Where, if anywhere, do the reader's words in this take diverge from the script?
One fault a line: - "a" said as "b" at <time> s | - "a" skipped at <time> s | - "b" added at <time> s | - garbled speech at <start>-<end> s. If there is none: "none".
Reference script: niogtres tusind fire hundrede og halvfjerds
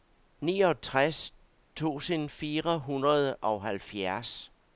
none